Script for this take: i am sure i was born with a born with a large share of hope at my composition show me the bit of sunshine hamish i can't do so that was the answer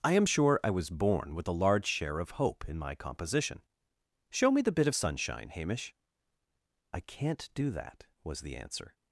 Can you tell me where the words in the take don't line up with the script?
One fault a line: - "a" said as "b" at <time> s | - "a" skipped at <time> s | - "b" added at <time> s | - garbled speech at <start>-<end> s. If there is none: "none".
- "born with a" skipped at 1.6 s
- "at" said as "in" at 2.7 s
- "so" skipped at 7.7 s